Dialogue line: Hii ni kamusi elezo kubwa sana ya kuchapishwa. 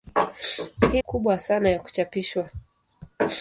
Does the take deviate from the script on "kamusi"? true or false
true